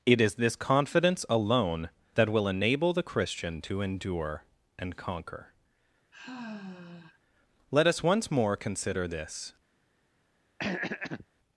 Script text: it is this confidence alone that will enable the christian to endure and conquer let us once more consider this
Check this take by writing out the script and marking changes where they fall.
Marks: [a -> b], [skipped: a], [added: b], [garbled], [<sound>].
it is this confidence alone that will enable the christian to endure and conquer [sigh] let us once more consider this [throat clearing]